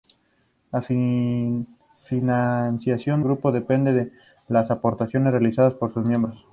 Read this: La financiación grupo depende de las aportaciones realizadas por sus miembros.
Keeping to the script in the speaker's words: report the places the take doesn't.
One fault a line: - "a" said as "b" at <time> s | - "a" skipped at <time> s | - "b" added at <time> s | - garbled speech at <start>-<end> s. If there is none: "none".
none